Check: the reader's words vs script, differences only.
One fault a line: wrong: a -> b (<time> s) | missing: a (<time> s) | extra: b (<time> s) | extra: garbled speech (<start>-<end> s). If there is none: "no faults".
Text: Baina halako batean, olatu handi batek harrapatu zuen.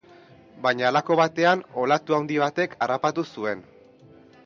no faults